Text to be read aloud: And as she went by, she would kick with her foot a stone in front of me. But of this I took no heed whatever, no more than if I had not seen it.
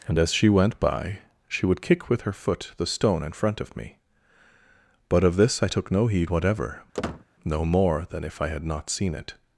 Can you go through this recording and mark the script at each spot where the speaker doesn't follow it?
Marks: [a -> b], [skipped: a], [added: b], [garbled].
And as she went by, she would kick with her foot [a -> the] stone in front of me. But of this I took no heed whatever, no more than if I had not seen it.